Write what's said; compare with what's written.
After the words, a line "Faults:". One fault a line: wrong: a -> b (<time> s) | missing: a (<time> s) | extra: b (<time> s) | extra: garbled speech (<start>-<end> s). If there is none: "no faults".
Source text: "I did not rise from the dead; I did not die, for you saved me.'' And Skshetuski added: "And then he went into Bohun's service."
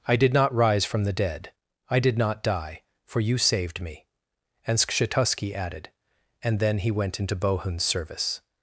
"I did not rise from the dead; I did not die, for you saved me.'' And Skshetuski added: "And then he went into Bohun's service."
Faults:
no faults